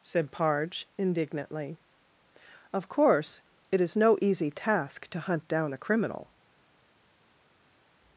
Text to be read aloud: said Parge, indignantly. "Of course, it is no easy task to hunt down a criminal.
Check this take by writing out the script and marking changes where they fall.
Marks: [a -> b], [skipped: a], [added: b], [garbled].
said Parge, indignantly. "Of course, it is no easy task to hunt down a criminal.